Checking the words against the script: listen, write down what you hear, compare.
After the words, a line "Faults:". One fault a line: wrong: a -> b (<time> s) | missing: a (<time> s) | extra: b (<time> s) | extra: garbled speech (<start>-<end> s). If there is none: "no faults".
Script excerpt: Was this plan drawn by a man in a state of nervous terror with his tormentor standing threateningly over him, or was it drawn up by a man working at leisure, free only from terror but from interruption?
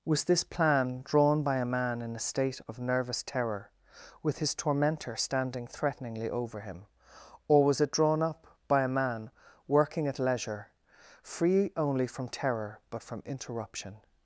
Was this plan drawn by a man in a state of nervous terror with his tormentor standing threateningly over him, or was it drawn up by a man working at leisure, free only from terror but from interruption?
Faults:
no faults